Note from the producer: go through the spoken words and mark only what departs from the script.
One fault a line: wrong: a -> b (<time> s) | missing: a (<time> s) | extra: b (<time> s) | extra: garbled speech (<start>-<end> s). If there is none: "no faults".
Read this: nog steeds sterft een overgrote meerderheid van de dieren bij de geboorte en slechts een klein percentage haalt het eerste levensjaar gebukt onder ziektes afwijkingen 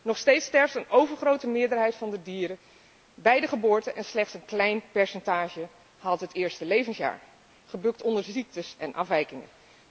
extra: en (8.8 s)